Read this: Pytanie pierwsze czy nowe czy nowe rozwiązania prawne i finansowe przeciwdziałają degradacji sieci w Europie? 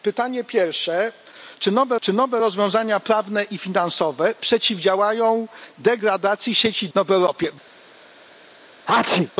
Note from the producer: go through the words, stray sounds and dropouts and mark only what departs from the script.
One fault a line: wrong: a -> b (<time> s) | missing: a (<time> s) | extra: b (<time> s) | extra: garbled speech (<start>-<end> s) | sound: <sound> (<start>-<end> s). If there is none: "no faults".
sound: sneeze (8.9-9.3 s)